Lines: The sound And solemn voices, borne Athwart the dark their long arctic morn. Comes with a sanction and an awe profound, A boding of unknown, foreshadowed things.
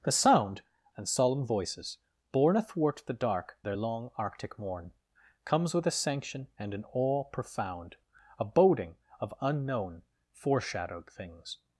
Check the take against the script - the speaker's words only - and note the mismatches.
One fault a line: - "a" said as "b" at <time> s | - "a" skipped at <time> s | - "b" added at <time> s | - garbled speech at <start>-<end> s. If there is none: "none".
none